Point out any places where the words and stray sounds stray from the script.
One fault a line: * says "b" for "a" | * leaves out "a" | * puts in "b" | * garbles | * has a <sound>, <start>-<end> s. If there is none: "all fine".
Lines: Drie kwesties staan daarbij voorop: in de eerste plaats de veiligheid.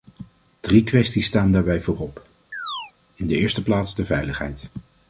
* has a chirp, 2.5-2.9 s